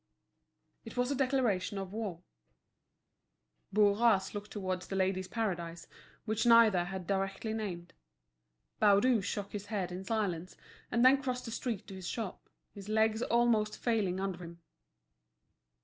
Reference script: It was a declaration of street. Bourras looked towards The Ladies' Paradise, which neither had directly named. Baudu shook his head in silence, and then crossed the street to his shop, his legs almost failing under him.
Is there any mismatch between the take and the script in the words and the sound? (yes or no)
yes